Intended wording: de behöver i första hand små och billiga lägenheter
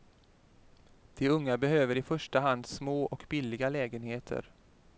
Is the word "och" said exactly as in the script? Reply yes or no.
yes